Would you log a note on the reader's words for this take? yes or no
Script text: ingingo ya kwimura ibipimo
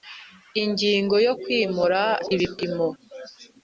no